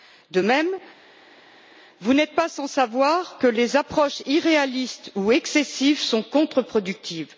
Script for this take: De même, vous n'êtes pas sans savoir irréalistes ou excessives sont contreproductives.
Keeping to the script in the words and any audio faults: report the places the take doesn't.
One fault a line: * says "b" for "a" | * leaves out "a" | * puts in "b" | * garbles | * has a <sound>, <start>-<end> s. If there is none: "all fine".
* puts in "que les approches"